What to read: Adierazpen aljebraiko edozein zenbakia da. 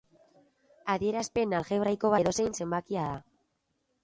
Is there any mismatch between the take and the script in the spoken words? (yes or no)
no